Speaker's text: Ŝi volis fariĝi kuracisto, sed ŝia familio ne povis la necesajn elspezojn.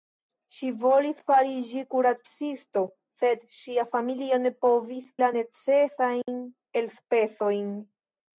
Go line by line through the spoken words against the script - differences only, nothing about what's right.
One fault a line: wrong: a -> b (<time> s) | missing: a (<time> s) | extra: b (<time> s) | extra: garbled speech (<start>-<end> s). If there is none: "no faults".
no faults